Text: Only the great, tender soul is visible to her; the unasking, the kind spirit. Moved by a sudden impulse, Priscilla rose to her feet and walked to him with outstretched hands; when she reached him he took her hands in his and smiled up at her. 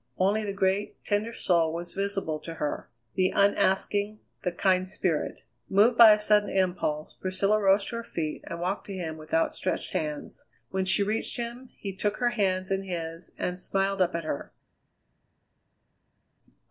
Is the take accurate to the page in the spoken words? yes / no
no